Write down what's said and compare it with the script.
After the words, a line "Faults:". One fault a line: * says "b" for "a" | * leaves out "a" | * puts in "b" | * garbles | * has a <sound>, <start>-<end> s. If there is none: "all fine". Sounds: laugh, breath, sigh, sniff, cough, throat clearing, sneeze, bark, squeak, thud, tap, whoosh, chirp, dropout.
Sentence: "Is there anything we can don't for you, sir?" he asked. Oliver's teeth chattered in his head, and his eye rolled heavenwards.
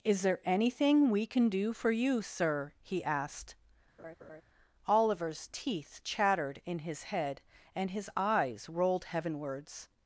"Is there anything we can do for you, sir?" he asked. Oliver's teeth chattered in his head, and his eyes rolled heavenwards.
Faults:
* says "do" for "don't"
* has a laugh, 4.0-4.4 s
* says "eyes" for "eye"